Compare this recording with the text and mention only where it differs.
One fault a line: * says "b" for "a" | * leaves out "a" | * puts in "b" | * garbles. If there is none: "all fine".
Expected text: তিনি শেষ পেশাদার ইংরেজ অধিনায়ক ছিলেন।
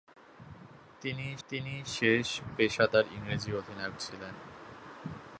* puts in "তিনি"